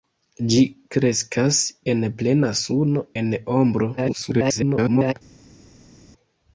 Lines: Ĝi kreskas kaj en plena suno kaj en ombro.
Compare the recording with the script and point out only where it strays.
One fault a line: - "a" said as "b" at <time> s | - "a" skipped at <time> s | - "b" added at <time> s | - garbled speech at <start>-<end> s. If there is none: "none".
- "kaj" skipped at 1.6 s
- "kaj" skipped at 3.0 s
- garbled speech at 4.0-5.1 s